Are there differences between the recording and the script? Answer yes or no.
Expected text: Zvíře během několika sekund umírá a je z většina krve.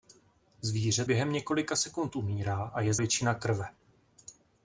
no